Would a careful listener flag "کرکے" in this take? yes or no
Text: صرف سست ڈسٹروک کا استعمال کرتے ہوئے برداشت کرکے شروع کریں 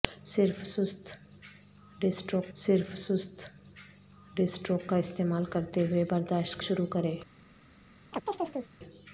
yes